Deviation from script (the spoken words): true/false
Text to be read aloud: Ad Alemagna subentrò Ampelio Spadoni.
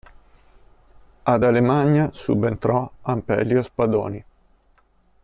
false